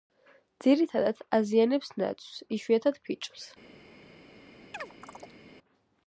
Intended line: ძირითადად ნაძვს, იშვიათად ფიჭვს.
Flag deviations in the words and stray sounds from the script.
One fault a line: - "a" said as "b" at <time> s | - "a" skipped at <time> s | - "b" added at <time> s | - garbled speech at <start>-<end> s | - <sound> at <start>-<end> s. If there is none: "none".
- "აზიანებს" added at 1.4 s
- chirp at 4.7-5.4 s